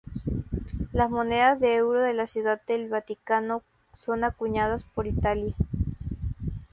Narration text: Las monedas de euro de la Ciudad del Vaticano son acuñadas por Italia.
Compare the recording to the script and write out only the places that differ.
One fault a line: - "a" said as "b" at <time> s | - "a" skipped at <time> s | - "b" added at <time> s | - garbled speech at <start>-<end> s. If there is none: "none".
none